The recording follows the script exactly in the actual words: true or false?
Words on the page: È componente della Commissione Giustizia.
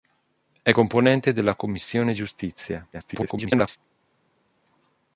false